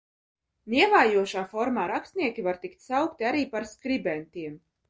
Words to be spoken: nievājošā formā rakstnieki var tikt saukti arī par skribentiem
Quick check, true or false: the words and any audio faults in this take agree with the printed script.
true